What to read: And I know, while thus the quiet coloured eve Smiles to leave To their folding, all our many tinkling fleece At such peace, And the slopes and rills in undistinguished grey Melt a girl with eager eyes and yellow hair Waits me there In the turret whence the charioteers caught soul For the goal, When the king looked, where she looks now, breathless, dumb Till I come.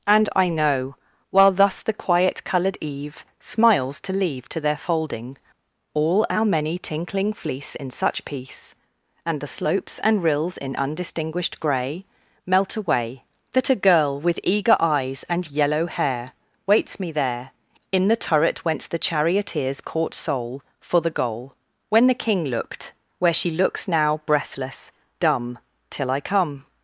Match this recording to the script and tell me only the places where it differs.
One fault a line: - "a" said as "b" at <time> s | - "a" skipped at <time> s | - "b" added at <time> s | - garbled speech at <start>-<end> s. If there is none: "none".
- "At" said as "In" at 7.8 s
- "away That" added at 12.8 s